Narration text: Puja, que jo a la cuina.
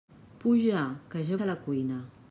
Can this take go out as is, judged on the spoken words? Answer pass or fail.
pass